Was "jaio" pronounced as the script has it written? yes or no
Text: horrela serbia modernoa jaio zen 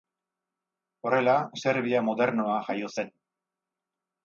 yes